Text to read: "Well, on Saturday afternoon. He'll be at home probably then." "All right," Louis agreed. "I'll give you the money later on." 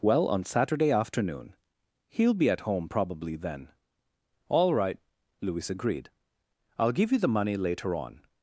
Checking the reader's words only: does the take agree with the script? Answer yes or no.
yes